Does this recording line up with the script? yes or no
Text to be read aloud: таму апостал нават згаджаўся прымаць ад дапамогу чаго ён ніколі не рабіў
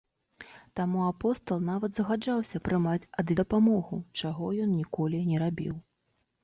yes